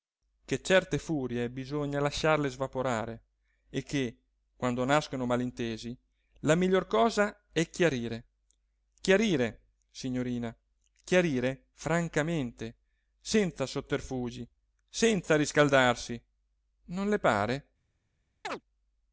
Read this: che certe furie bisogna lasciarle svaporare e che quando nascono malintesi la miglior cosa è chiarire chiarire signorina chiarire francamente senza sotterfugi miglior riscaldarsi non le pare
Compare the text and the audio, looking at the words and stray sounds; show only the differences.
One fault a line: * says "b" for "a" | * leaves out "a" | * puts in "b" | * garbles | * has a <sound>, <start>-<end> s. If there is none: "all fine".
* says "senza" for "miglior"
* has a chirp, 18.4-18.6 s